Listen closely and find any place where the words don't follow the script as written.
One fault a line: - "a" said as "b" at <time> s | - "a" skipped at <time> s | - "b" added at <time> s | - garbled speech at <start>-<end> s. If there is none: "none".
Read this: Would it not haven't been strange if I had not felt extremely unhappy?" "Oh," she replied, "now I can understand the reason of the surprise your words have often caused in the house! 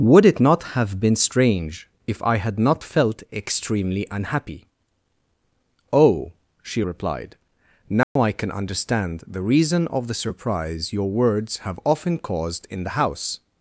- "haven't" said as "have" at 0.7 s